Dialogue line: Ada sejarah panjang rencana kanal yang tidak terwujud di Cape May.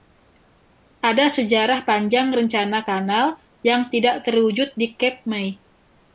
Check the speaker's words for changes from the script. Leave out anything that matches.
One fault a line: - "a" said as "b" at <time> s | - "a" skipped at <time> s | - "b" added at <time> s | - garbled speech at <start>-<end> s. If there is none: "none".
none